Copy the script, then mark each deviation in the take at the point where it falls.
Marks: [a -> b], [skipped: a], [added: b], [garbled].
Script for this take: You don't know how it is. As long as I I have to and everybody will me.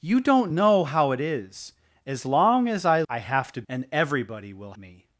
You don't know how it is. As long as I I have to and everybody will me.